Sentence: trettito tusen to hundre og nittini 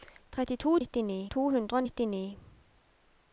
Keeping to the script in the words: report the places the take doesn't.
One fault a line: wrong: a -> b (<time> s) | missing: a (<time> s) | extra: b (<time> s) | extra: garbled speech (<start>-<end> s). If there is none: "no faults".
wrong: tusen -> nittini (0.8 s)